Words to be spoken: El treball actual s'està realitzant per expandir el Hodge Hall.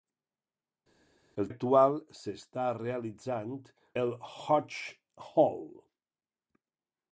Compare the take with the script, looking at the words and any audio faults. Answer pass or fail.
fail